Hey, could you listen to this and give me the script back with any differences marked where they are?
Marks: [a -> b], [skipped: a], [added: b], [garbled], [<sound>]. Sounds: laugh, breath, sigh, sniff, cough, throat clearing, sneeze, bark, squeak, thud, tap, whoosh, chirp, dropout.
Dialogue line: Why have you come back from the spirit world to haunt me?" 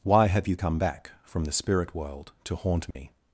Why have you come back from the spirit world to haunt me?" [dropout]